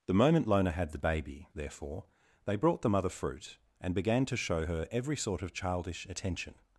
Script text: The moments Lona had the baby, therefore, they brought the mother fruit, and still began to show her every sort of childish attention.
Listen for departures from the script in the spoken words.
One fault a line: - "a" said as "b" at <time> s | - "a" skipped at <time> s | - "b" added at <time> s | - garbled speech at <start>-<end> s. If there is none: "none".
- "moments" said as "moment" at 0.1 s
- "still" skipped at 4.0 s